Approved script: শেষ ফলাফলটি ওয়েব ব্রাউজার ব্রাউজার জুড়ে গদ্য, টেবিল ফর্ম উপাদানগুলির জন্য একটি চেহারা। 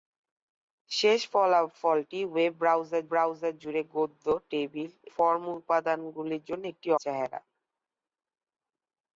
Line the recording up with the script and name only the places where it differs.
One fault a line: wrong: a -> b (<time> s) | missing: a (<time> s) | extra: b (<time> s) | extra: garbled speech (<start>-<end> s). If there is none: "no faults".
no faults